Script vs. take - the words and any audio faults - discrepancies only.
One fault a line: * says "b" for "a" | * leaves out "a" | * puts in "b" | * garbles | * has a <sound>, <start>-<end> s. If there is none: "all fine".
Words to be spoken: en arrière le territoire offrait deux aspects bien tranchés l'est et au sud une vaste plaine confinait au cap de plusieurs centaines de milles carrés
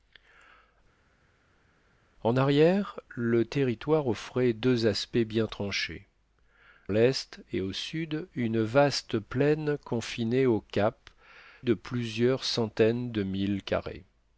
all fine